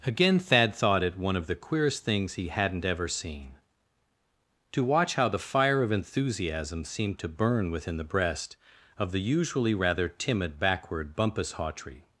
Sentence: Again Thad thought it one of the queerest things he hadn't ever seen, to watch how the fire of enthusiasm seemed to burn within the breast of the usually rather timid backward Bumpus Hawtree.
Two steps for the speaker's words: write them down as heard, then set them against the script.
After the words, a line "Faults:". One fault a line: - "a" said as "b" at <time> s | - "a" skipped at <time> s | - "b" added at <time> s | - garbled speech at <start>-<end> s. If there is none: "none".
Again Thad thought it one of the queerest things he hadn't ever seen, to watch how the fire of enthusiasm seemed to burn within the breast of the usually rather timid backward Bumpus Hawtree.
Faults:
none